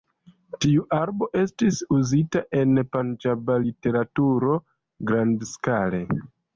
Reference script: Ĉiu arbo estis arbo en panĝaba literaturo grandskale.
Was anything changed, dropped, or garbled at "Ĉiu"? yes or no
yes